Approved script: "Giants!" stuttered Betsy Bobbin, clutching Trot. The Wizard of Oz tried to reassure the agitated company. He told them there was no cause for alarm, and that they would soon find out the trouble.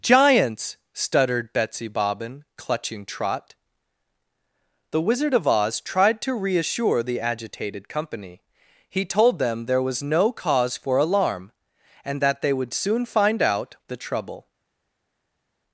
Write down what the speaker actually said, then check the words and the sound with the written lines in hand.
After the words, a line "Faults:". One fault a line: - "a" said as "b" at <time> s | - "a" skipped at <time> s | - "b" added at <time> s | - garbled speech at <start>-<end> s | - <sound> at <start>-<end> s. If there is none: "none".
"Giants!" stuttered Betsy Bobbin, clutching Trot. The Wizard of Oz tried to reassure the agitated company. He told them there was no cause for alarm, and that they would soon find out the trouble.
Faults:
none